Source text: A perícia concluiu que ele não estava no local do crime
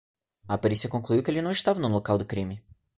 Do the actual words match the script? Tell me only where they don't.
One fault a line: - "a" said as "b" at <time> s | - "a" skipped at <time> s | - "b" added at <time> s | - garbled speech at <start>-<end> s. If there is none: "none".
none